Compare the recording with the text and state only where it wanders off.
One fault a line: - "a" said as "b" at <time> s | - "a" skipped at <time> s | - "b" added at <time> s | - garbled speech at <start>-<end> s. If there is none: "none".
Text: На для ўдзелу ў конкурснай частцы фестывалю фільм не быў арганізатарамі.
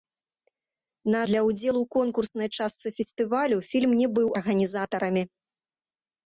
none